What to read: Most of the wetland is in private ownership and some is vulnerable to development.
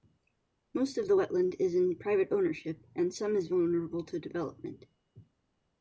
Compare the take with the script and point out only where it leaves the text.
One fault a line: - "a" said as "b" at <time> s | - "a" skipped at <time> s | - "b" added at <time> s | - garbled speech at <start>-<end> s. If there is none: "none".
none